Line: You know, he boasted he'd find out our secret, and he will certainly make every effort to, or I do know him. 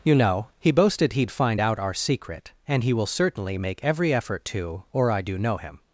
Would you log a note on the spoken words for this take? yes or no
no